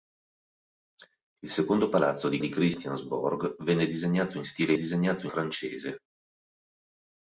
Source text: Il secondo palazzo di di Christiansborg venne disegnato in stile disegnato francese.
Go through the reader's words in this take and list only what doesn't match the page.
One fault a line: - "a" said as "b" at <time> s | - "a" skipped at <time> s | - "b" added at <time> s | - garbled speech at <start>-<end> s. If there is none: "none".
none